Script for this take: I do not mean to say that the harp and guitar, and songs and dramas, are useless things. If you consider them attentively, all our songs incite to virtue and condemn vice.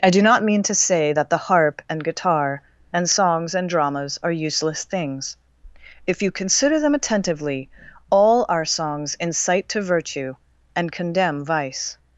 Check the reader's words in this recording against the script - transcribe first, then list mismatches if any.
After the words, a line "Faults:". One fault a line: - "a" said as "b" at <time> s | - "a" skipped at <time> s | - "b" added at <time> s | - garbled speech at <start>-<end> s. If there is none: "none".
I do not mean to say that the harp and guitar, and songs and dramas, are useless things. If you consider them attentively, all our songs incite to virtue and condemn vice.
Faults:
none